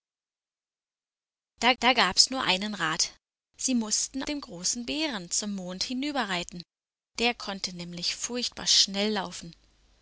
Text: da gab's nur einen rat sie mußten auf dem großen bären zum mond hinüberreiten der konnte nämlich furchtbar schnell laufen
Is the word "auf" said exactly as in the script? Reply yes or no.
no